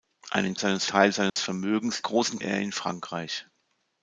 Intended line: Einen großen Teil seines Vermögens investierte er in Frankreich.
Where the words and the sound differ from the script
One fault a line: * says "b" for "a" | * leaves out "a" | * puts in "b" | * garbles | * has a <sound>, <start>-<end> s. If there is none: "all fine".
* says "seines" for "großen"
* has a dropout, 1.3-1.4 s
* says "großen" for "investierte"